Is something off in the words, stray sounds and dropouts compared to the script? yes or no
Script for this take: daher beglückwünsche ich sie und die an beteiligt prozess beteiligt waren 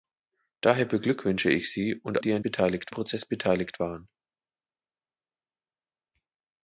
no